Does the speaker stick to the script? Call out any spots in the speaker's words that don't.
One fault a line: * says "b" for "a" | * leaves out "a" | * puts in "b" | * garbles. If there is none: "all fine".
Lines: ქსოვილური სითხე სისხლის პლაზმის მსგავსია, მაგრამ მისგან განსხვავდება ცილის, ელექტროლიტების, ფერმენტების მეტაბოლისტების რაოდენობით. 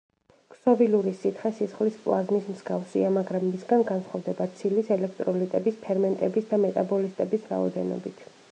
* puts in "და"